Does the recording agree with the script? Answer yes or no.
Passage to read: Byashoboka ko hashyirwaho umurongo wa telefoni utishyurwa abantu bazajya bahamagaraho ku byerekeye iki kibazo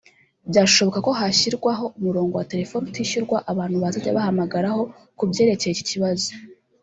yes